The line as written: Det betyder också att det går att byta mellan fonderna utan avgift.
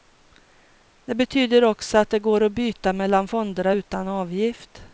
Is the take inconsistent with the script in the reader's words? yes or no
no